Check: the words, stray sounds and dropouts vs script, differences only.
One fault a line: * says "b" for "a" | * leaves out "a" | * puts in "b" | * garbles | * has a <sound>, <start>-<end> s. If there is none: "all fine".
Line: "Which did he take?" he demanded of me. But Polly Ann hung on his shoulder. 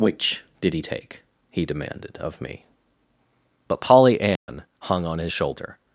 * has a dropout, 4.4-4.5 s